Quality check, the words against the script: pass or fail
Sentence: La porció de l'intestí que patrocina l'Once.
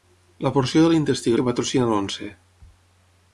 pass